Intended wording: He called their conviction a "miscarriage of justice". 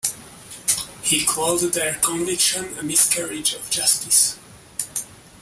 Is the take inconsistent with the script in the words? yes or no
no